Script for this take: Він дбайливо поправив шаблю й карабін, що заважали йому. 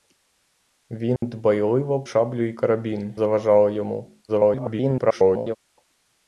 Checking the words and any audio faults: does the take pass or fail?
fail